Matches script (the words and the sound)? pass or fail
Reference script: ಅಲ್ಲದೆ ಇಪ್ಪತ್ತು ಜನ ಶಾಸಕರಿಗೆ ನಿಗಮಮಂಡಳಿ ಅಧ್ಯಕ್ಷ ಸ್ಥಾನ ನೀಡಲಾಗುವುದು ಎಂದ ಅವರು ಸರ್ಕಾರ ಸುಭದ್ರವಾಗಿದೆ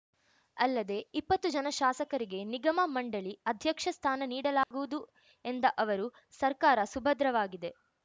fail